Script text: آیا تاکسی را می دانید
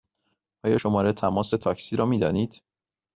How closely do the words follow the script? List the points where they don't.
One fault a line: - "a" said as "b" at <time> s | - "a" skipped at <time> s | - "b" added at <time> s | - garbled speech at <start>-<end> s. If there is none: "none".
- "شماره تماس" added at 0.7 s